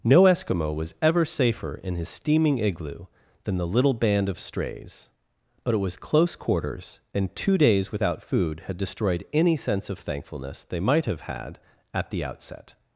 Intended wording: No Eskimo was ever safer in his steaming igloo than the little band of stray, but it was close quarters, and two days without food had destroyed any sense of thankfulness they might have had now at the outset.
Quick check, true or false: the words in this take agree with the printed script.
false